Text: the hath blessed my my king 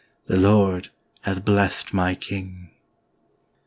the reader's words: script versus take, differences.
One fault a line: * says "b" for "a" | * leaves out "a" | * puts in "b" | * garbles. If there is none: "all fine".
* puts in "lord"
* leaves out "my"